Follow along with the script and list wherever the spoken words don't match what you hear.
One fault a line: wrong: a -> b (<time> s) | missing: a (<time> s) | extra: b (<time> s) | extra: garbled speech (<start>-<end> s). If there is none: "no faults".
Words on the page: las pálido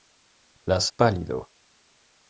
no faults